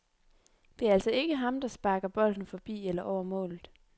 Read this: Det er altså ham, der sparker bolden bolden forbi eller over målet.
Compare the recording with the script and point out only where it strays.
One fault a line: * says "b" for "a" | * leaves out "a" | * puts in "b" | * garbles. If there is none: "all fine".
* puts in "ikke"
* leaves out "bolden"